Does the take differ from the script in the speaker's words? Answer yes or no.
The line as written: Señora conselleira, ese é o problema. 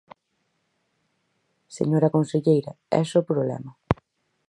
no